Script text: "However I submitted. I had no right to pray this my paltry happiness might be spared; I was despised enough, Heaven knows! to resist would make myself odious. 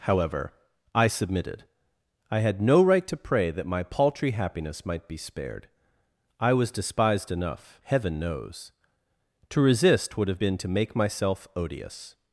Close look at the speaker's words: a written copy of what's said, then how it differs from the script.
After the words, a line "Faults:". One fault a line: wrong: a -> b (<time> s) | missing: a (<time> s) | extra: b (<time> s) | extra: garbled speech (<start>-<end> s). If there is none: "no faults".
"However I submitted. I had no right to pray that my paltry happiness might be spared; I was despised enough, Heaven knows! to resist would have been to make myself odious.
Faults:
wrong: this -> that (3.5 s)
extra: have been to (10.3 s)